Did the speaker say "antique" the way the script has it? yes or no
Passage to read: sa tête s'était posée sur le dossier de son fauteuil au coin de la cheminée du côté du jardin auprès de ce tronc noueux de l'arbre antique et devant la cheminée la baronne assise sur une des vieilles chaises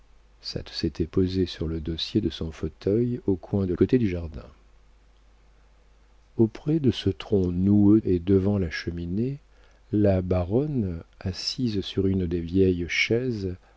no